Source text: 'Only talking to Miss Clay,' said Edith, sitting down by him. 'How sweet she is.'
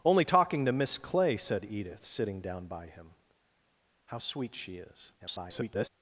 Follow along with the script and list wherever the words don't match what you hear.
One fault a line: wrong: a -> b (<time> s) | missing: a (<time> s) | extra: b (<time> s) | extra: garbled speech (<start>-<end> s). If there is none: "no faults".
extra: garbled speech (5.2-5.9 s)